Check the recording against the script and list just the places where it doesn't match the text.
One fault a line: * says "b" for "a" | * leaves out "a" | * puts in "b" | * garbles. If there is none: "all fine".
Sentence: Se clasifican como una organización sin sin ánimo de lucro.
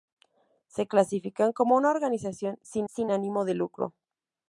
all fine